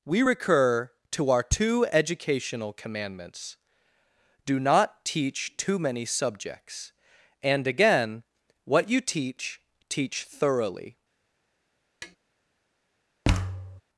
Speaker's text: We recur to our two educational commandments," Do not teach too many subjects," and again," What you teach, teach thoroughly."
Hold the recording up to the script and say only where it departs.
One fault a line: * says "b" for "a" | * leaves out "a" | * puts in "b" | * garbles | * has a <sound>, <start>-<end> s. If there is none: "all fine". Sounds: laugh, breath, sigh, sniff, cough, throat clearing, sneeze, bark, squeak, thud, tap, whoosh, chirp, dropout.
* has a tap, 12.0-12.2 s
* has a thud, 13.2-13.8 s